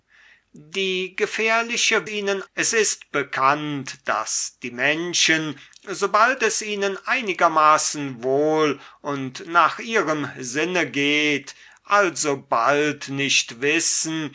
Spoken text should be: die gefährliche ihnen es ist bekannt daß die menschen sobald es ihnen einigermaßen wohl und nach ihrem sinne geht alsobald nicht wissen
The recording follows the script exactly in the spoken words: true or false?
true